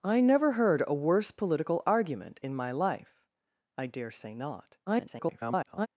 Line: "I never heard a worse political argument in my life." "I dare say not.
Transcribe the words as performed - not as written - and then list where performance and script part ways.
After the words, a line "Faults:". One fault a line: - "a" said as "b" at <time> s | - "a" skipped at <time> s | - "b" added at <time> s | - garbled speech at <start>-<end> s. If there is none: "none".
"I never heard a worse political argument in my life." "I dare say not. [garbled]
Faults:
- garbled speech at 4.9-5.9 s